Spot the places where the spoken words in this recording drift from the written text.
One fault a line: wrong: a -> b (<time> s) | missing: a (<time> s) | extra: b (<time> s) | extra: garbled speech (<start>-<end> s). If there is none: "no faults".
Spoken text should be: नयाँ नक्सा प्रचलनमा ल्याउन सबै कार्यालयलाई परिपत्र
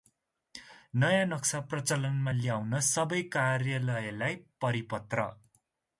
no faults